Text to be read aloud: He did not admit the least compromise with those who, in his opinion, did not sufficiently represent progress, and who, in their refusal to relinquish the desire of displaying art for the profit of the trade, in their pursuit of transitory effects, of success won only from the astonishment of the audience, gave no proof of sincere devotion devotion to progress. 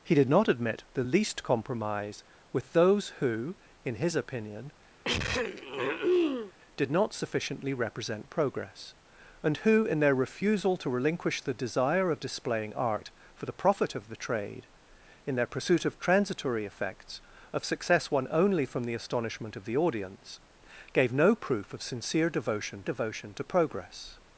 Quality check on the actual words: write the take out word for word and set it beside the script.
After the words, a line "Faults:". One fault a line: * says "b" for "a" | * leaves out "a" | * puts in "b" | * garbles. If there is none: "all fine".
He did not admit the least compromise with those who, in his opinion, did not sufficiently represent progress, and who, in their refusal to relinquish the desire of displaying art for the profit of the trade, in their pursuit of transitory effects, of success won only from the astonishment of the audience, gave no proof of sincere devotion devotion to progress.
Faults:
all fine